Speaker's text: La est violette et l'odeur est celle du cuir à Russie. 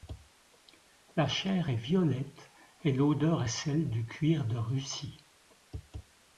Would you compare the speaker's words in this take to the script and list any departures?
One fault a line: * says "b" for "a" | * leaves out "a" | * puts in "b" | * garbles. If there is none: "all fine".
* puts in "chair"
* says "de" for "à"